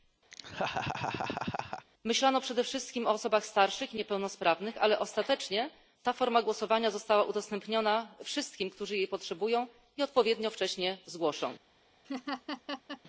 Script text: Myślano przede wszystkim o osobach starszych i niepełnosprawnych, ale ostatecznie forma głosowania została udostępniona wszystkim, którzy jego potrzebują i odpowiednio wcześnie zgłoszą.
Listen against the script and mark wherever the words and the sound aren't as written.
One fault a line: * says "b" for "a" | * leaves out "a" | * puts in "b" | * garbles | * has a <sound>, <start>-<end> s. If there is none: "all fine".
* has a laugh, 0.3-1.9 s
* puts in "ta"
* says "jej" for "jego"
* has a laugh, 12.0-13.0 s